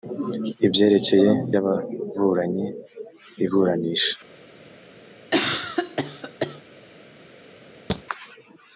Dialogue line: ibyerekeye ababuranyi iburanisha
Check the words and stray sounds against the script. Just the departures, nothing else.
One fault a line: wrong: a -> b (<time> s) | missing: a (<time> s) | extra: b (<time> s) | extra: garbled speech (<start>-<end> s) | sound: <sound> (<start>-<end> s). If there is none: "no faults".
sound: cough (5.3-6.6 s)
sound: thud (7.9-8.0 s)